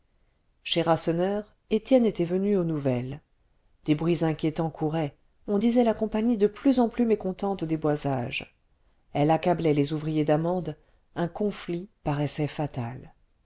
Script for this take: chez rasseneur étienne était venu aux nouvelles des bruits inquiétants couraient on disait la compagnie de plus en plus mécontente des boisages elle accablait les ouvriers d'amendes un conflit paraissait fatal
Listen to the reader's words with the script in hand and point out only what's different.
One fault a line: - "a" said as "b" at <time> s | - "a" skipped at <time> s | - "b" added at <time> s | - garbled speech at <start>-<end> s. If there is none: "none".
none